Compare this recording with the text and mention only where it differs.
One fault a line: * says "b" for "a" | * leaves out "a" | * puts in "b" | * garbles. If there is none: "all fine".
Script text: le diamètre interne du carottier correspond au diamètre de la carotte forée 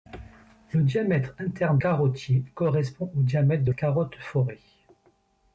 * leaves out "du"
* leaves out "la"